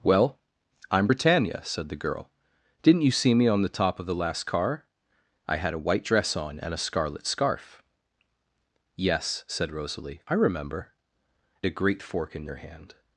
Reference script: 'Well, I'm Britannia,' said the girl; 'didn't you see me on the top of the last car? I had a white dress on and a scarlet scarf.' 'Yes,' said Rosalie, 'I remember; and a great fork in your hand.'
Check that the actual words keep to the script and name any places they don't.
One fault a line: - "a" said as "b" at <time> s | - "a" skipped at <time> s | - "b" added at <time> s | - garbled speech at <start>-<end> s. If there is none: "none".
- "and" skipped at 10.9 s